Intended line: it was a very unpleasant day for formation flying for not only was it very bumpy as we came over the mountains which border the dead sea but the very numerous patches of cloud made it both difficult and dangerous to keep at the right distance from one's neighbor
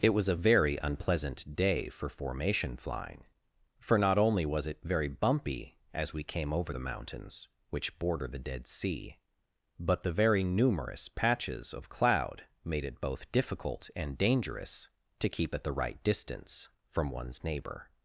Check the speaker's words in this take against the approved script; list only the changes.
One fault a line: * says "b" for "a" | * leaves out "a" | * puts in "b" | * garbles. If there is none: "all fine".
all fine